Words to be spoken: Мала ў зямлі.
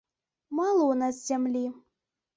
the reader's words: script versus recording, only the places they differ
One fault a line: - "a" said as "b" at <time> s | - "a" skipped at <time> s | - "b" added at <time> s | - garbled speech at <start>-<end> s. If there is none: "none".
- "нас" added at 1.0 s